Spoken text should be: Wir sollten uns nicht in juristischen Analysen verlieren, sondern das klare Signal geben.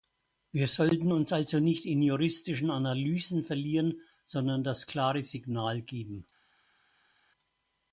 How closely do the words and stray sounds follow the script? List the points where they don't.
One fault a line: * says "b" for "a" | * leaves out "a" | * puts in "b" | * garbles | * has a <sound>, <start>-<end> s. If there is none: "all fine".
* puts in "also"